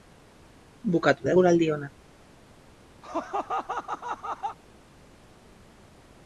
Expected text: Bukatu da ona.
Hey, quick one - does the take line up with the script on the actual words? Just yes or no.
no